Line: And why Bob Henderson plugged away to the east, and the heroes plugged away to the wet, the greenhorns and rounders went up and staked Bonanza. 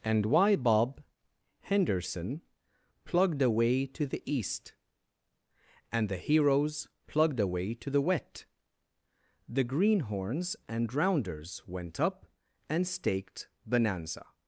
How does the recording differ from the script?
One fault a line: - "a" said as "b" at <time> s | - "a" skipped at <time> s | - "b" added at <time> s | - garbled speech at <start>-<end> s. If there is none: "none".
none